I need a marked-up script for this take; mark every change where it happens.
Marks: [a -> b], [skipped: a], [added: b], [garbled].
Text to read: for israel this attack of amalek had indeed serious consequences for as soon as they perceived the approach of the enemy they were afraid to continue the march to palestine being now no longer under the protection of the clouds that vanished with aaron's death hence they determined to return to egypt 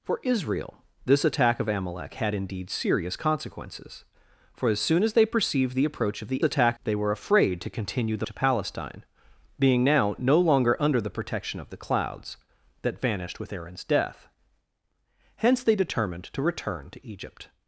for israel this attack of amalek had indeed serious consequences for as soon as they perceived the approach of the [enemy -> attack] they were afraid to continue the [skipped: march] to palestine being now no longer under the protection of the clouds that vanished with aaron's death hence they determined to return to egypt